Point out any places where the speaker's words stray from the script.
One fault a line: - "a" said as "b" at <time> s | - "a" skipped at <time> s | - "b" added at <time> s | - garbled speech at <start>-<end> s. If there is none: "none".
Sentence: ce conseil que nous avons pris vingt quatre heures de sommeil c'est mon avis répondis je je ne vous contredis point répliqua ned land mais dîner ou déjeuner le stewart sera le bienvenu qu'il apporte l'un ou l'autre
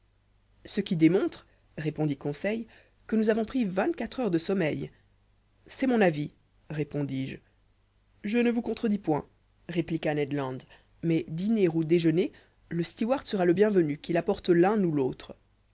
- "qui démontre répondit" added at 0.8 s